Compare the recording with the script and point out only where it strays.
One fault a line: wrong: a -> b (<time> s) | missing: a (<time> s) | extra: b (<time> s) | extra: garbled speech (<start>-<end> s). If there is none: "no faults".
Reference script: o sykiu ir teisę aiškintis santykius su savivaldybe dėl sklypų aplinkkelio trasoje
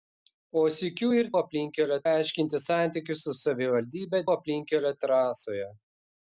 wrong: teisę -> aplinkkelio (1.4 s)
missing: dėl sklypų (4.2 s)